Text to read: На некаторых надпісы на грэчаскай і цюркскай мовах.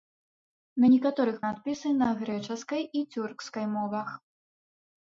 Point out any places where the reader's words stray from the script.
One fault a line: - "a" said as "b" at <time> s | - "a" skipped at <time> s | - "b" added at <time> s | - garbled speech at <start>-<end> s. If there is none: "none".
none